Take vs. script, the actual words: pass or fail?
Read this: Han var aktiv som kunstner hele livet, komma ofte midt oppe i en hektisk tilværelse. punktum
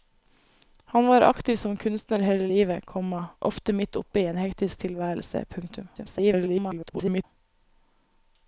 fail